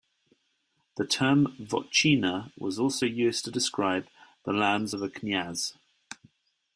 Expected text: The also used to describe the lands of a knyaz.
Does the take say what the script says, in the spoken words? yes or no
no